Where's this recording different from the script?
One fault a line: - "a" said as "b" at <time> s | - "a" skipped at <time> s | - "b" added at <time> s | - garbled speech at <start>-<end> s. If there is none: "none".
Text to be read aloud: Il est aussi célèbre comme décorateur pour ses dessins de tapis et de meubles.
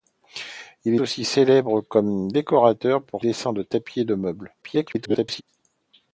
- "est" skipped at 0.9 s
- "ses" skipped at 3.2 s
- garbled speech at 4.6-5.4 s